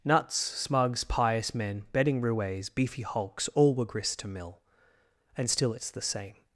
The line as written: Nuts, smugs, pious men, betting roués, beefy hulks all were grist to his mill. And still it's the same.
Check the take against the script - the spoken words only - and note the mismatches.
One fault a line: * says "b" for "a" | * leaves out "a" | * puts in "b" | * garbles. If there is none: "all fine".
* leaves out "his"